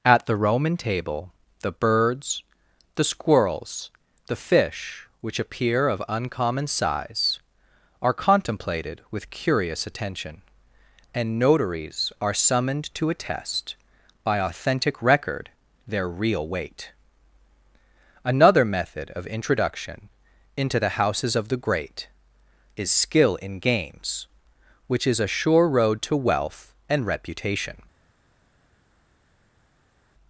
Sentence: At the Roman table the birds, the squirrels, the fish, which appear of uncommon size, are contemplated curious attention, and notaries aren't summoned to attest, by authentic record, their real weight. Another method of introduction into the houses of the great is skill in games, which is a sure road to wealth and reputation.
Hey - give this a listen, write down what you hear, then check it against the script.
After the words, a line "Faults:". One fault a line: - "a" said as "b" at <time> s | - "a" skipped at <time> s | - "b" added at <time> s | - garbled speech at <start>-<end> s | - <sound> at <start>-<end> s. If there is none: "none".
At the Roman table the birds, the squirrels, the fish, which appear of uncommon size, are contemplated with curious attention, and notaries are summoned to attest, by authentic record, their real weight. Another method of introduction into the houses of the great is skill in games, which is a sure road to wealth and reputation.
Faults:
- "with" added at 9.1 s
- "aren't" said as "are" at 12.2 s